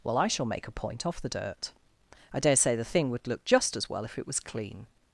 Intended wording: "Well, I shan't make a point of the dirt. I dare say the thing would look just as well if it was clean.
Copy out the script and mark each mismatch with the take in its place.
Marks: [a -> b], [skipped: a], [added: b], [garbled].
"Well, I [shan't -> shall] make a point [of -> off] the dirt. I dare say the thing would look just as well if it was clean.